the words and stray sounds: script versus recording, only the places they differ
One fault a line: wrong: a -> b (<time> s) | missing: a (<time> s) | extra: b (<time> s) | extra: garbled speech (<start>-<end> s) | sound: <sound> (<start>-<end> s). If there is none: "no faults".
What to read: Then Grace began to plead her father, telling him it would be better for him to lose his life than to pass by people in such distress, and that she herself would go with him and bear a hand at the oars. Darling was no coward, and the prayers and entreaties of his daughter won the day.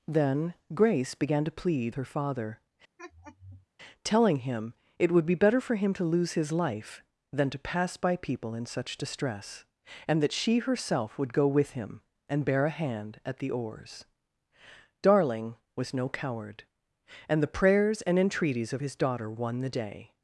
sound: laugh (3.0-3.7 s)